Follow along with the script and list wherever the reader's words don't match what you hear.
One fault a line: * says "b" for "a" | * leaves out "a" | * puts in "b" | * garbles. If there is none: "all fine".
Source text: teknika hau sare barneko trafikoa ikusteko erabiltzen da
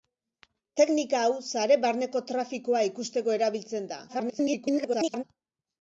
* garbles